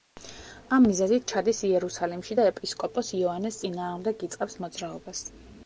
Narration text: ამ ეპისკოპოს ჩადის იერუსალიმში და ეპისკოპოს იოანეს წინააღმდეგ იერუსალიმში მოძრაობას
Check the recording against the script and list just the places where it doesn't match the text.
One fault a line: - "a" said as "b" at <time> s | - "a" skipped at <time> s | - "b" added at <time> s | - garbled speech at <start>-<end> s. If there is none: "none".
- "ეპისკოპოს" said as "მიზეზით" at 0.8 s
- "იერუსალიმში" said as "იწყებს" at 4.3 s